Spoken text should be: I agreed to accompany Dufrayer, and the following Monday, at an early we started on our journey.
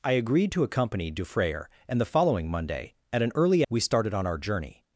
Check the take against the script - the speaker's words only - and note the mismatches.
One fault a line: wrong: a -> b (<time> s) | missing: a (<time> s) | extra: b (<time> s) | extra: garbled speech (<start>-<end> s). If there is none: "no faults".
no faults